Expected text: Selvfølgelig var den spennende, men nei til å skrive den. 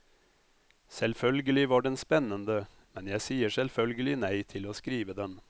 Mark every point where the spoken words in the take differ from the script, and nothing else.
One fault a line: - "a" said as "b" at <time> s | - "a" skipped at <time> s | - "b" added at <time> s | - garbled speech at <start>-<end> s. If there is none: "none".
- "jeg sier selvfølgelig" added at 3.1 s